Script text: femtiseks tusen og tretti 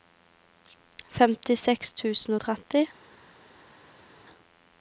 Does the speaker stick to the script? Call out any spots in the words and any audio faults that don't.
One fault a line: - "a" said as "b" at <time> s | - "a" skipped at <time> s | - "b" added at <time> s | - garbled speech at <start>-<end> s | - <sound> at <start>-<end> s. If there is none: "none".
none